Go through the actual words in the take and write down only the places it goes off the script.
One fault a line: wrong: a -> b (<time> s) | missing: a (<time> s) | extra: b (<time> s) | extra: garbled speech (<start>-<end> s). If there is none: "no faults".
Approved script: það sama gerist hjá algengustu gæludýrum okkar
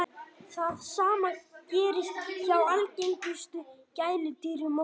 no faults